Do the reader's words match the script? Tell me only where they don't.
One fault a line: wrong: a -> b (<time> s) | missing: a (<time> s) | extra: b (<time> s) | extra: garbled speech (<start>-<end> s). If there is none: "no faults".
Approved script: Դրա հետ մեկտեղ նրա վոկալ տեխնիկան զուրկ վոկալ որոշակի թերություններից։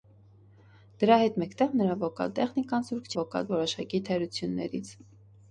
no faults